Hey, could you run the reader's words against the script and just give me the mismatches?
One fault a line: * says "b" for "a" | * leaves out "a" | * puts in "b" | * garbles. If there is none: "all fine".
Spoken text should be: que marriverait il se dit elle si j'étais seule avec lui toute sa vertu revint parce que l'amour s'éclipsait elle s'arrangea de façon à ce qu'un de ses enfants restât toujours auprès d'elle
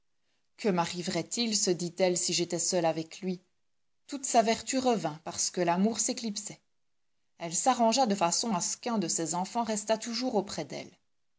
all fine